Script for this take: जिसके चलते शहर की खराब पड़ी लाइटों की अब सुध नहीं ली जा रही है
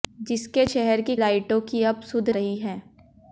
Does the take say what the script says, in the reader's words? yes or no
no